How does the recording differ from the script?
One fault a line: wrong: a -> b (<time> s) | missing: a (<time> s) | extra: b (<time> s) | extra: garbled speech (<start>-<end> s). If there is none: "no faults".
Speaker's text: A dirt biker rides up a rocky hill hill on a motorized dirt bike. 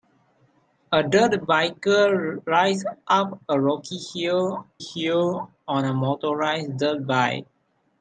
no faults